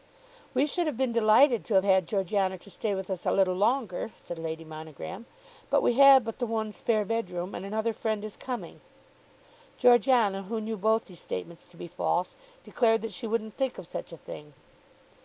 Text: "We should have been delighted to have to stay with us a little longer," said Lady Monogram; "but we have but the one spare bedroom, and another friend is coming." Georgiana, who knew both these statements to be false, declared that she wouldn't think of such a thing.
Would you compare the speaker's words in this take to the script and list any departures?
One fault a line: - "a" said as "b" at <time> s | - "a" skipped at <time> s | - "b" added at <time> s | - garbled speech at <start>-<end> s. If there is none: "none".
- "had Georgiana" added at 1.8 s